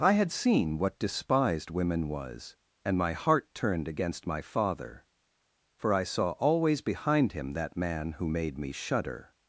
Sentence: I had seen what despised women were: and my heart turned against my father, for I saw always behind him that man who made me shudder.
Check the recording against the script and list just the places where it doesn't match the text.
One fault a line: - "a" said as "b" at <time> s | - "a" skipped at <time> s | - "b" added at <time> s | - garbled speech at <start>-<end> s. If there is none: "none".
- "were" said as "was" at 2.1 s